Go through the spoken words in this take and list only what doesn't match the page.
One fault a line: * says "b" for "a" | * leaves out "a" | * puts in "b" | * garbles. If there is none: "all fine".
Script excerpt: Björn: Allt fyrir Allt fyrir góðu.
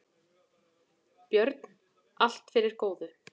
* leaves out "Allt fyrir"